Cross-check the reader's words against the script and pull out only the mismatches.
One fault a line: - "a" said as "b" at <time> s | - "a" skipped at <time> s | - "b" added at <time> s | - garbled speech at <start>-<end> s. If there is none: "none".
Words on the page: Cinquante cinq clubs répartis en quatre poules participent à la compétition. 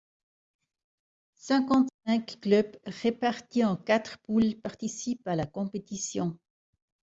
none